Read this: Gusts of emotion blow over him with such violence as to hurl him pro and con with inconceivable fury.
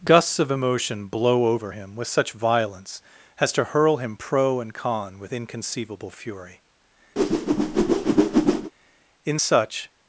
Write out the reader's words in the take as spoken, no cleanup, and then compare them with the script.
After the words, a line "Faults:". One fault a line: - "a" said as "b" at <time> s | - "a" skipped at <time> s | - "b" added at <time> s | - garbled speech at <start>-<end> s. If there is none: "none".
Gusts of emotion blow over him with such violence as to hurl him pro and con with inconceivable fury. In such
Faults:
- "In such" added at 9.2 s